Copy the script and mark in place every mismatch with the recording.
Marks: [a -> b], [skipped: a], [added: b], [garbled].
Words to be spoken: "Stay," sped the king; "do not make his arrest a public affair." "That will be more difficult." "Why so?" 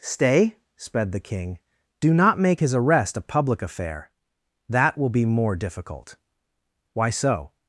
"Stay," sped the king; "do not make his arrest a public affair." "That will be more difficult." "Why so?"